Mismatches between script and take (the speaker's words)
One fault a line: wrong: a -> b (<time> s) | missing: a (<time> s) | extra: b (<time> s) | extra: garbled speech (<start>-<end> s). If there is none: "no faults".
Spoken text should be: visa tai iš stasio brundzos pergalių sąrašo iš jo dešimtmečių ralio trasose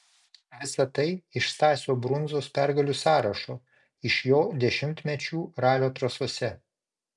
no faults